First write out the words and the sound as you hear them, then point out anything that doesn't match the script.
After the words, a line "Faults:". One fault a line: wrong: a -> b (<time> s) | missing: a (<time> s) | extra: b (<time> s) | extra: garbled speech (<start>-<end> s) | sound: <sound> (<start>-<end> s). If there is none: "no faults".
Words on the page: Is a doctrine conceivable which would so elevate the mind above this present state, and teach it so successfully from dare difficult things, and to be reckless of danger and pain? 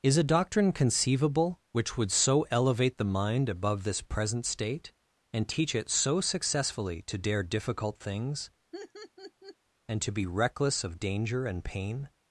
Is a doctrine conceivable which would so elevate the mind above this present state, and teach it so successfully to dare difficult things, and to be reckless of danger and pain?
Faults:
wrong: from -> to (7.0 s)
sound: laugh (8.7-9.6 s)